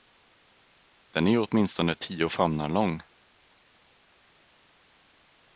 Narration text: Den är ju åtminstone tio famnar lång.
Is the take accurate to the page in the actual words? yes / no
yes